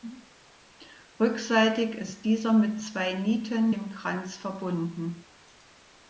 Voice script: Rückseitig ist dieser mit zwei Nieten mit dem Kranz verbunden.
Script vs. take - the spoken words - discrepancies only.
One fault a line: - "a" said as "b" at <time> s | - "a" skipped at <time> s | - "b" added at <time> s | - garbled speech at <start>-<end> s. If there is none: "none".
- "mit" skipped at 3.8 s